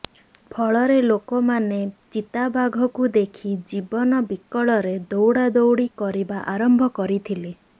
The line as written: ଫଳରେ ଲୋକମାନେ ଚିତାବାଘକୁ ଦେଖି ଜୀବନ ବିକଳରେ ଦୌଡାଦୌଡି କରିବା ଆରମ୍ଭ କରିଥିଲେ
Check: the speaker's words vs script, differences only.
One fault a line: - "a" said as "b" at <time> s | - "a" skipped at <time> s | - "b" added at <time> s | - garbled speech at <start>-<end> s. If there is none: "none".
none